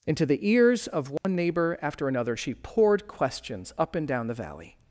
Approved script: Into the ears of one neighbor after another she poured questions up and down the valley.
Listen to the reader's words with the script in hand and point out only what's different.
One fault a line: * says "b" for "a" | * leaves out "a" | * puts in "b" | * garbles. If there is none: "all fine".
all fine